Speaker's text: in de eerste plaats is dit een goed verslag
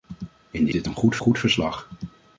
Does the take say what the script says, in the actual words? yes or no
no